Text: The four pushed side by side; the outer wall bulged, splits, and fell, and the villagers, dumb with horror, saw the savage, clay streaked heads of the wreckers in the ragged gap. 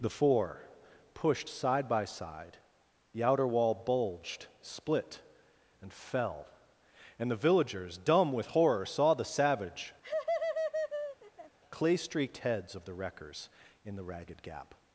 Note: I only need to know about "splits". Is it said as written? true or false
false